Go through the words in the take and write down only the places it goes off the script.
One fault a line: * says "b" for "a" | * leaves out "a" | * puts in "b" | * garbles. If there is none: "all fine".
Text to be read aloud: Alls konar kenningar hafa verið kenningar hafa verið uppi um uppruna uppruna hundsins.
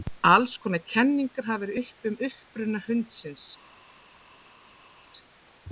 * leaves out "kenningar hafa verið"
* leaves out "uppruna"